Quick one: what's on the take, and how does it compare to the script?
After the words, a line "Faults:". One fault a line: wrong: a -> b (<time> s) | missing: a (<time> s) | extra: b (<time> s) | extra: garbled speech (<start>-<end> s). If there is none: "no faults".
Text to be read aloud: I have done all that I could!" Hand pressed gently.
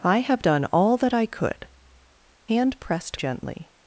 I have done all that I could!" Hand pressed gently.
Faults:
no faults